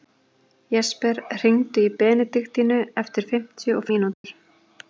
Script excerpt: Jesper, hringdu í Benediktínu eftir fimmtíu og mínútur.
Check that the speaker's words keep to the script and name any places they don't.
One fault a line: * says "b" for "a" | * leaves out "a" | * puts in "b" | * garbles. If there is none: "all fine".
all fine